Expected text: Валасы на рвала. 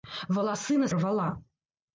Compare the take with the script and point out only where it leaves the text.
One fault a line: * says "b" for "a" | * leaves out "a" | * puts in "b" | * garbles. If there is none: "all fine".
all fine